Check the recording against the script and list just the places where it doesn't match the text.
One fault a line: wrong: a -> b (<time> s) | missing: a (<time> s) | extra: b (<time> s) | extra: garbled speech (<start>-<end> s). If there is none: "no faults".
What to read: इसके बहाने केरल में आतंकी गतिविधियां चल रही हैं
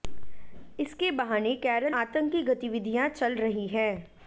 missing: में (1.9 s)